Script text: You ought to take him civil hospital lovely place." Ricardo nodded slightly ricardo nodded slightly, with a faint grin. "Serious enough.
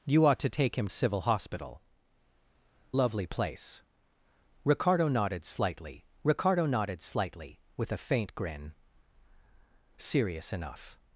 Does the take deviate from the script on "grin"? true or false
false